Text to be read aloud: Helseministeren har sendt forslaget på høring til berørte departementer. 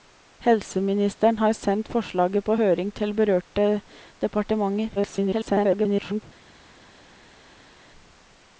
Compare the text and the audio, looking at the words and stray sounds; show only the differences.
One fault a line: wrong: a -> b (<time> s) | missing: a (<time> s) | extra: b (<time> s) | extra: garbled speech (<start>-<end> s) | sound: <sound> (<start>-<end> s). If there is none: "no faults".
extra: garbled speech (5.0-6.2 s)